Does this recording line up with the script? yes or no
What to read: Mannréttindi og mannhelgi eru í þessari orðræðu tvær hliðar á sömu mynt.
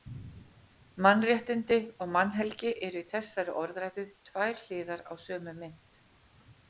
yes